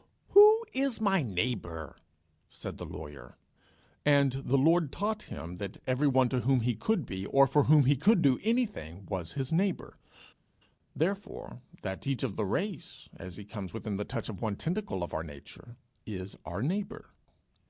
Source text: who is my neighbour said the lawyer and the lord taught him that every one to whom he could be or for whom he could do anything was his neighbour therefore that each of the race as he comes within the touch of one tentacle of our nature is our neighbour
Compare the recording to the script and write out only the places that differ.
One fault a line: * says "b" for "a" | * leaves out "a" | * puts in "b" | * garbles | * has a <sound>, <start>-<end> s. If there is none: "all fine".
all fine